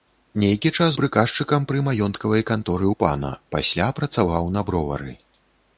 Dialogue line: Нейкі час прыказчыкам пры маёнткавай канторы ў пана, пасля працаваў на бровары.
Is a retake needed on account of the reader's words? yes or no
no